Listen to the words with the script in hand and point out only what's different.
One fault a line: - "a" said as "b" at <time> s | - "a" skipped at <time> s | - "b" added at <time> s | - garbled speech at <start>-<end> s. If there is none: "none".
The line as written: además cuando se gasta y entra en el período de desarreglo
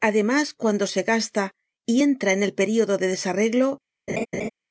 none